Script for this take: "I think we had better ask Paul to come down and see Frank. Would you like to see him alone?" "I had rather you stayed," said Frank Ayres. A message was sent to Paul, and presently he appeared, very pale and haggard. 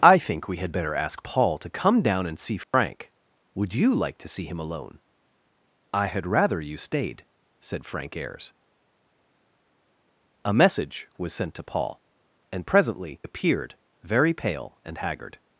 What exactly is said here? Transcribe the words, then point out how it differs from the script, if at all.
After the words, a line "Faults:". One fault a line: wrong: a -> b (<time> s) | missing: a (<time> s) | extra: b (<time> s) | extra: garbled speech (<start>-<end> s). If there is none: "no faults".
"I think we had better ask Paul to come down and see Frank. Would you like to see him alone?" "I had rather you stayed," said Frank Ayres. A message was sent to Paul, and presently appeared, very pale and haggard.
Faults:
missing: he (13.2 s)